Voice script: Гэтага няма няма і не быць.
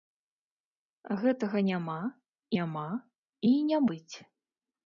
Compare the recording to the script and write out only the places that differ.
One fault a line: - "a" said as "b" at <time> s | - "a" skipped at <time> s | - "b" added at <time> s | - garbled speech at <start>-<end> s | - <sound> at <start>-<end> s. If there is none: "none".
none